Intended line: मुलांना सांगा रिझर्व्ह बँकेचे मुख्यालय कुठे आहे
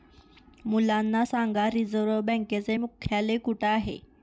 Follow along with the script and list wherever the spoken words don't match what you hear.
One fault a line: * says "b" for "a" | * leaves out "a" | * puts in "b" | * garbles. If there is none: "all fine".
all fine